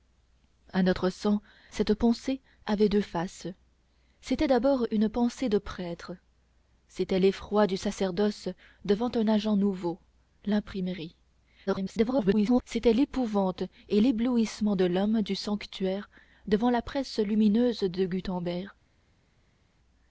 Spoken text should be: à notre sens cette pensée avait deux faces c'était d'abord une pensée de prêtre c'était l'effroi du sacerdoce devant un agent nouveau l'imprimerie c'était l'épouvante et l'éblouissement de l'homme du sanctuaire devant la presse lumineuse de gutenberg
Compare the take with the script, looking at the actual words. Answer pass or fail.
fail